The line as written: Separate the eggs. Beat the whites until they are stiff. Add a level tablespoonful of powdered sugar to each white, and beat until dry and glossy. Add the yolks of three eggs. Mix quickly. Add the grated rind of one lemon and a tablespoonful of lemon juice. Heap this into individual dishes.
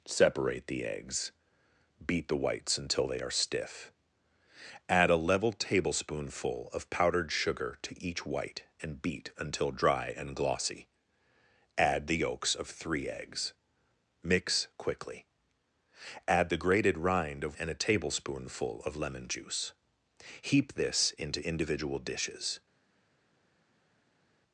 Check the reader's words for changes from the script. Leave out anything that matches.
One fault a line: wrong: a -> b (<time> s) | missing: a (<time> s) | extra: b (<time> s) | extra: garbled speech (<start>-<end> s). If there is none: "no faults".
missing: one lemon (17.6 s)